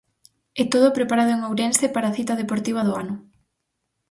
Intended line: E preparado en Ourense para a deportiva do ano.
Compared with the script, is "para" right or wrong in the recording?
right